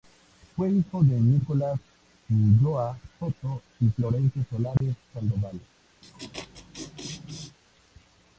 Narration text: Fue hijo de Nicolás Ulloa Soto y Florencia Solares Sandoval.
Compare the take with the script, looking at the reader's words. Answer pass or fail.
pass